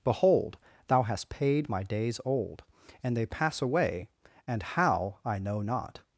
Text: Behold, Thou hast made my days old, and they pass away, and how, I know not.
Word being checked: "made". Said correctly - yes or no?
no